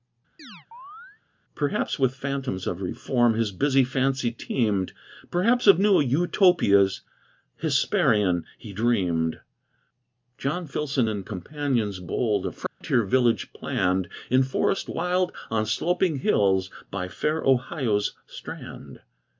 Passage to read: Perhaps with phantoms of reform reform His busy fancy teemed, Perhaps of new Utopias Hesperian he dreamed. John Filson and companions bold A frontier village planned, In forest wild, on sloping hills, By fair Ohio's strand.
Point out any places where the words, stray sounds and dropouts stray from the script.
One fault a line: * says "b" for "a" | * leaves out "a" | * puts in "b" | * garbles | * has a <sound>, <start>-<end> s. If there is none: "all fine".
* has a chirp, 0.4-1.2 s
* leaves out "reform"
* has a dropout, 12.7-12.8 s